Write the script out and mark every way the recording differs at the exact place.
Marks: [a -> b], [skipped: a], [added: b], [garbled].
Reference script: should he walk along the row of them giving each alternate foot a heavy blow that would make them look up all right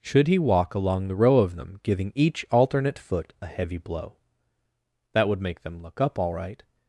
should he walk along the row of them giving each alternate foot a heavy blow that would make them look up all right